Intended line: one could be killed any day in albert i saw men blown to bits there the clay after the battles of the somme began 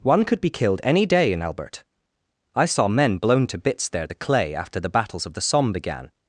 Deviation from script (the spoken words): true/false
false